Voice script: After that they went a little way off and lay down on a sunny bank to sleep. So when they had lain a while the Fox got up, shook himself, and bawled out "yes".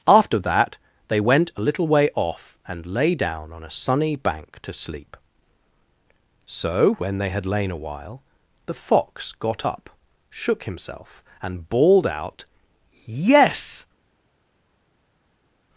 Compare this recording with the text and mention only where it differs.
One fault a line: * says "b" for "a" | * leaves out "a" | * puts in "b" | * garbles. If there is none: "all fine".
all fine